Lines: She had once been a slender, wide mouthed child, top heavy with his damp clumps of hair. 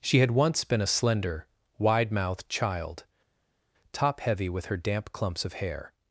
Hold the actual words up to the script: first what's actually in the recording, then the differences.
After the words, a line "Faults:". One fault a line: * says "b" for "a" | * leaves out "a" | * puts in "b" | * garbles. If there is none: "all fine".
She had once been a slender, wide mouthed child, top heavy with her damp clumps of hair.
Faults:
* says "her" for "his"